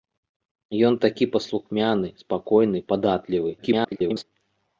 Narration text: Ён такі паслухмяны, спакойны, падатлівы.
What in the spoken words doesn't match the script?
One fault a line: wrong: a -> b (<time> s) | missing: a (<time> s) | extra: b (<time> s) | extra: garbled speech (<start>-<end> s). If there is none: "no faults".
extra: garbled speech (3.6-4.2 s)